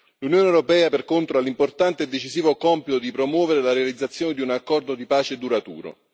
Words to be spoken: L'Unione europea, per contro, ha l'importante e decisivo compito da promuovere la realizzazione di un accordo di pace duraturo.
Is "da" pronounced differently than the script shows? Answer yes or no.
yes